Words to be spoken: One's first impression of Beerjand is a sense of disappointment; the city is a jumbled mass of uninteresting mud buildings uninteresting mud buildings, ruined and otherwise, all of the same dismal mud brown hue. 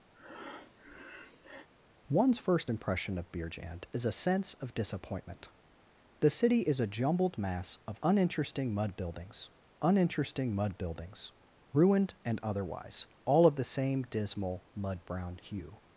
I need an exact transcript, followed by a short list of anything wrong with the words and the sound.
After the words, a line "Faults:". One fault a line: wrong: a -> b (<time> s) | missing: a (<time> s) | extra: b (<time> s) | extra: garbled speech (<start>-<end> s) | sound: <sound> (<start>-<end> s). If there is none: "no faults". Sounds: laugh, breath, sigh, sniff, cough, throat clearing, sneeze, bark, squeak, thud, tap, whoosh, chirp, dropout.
One's first impression of Beerjand is a sense of disappointment; the city is a jumbled mass of uninteresting mud buildings uninteresting mud buildings, ruined and otherwise, all of the same dismal mud brown hue.
Faults:
sound: breath (0.1-1.7 s)